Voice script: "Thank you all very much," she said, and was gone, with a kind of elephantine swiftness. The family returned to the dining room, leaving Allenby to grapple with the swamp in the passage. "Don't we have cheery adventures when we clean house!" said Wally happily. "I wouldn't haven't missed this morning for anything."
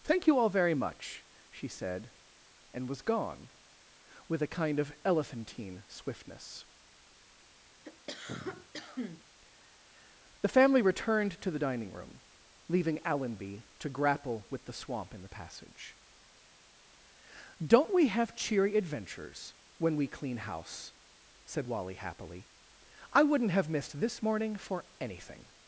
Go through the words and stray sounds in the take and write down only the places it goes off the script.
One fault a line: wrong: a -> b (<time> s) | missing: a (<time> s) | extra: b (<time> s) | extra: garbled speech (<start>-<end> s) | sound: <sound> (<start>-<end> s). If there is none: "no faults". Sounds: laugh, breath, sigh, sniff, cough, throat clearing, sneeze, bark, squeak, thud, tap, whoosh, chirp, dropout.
sound: cough (7.8-9.2 s)
wrong: haven't -> have (23.5 s)